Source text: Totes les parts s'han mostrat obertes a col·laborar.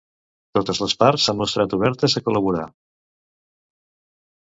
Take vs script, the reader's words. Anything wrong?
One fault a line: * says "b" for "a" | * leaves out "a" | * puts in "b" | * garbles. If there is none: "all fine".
all fine